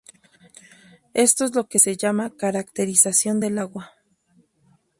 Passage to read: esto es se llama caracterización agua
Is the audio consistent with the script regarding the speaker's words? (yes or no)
no